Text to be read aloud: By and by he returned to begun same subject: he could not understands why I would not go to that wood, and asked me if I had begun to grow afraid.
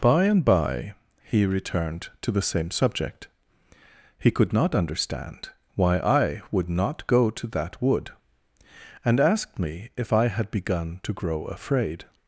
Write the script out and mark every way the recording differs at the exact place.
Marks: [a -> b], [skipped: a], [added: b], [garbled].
By and by he returned to [begun -> the] same subject: he could not [understands -> understand] why I would not go to that wood, and asked me if I had begun to grow afraid.